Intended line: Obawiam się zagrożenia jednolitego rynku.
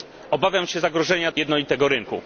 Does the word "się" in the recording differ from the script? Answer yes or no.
no